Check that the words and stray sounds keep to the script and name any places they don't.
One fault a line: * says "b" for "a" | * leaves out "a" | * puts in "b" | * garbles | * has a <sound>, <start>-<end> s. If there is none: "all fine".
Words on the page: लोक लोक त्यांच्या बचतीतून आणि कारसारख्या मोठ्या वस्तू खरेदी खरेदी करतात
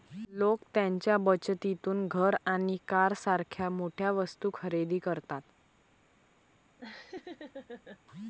* leaves out "लोक"
* puts in "घर"
* leaves out "खरेदी"
* has a laugh, 6.8-8.0 s